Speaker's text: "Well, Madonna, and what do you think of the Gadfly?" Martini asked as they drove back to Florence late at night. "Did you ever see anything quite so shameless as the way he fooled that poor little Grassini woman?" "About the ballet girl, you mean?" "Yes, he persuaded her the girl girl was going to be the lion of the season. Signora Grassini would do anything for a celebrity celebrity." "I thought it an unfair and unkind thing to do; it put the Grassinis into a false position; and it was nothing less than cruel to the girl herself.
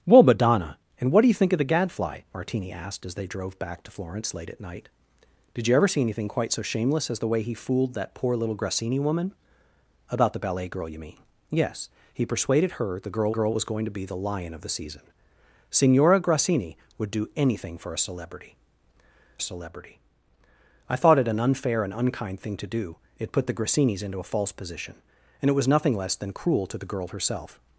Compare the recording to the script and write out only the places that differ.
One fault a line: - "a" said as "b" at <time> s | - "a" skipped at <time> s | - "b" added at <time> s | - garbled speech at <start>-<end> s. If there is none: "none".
none